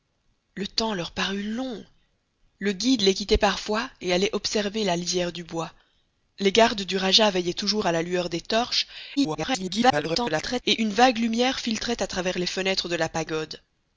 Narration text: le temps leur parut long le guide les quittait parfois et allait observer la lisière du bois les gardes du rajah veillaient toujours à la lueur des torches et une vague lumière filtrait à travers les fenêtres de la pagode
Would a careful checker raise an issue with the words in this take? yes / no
yes